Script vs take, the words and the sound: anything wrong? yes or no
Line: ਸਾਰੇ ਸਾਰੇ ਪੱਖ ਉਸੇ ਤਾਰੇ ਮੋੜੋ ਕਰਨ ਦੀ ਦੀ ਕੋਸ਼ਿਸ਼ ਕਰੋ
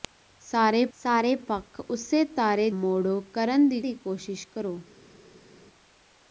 no